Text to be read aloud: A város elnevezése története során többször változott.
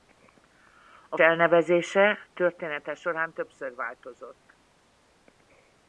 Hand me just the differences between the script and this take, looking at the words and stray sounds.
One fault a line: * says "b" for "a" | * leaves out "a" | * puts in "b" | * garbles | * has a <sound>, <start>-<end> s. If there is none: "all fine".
* leaves out "város"